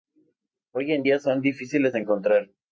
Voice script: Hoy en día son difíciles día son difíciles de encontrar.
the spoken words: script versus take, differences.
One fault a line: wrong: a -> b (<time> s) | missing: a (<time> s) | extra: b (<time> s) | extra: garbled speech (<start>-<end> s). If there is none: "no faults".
missing: día son difíciles (1.9 s)